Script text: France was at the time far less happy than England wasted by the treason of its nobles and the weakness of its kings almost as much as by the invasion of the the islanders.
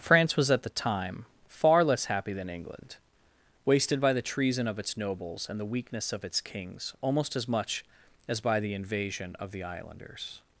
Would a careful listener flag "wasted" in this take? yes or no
no